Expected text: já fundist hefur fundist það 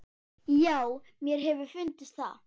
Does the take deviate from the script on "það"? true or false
false